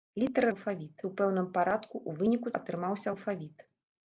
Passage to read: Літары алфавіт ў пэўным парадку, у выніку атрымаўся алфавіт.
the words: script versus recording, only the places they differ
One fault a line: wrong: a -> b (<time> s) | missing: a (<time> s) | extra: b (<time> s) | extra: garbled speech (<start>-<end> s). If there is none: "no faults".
no faults